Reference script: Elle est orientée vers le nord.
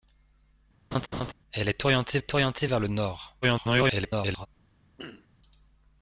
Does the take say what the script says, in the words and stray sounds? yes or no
no